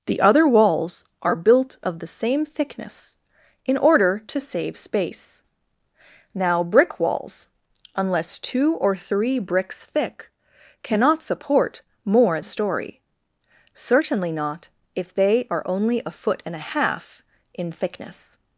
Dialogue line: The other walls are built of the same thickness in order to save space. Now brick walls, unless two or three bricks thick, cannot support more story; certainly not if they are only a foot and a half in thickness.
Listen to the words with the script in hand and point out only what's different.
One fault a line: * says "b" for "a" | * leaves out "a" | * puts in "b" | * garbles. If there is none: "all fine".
all fine